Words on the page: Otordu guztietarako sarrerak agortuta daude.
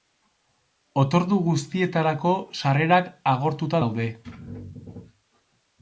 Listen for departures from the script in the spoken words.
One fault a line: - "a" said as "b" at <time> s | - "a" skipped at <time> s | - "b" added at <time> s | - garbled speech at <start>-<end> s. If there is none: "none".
none